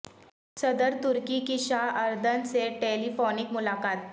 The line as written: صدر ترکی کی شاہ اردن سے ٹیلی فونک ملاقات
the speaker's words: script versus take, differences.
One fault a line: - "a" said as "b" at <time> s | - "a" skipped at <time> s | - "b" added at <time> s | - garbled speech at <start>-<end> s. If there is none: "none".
none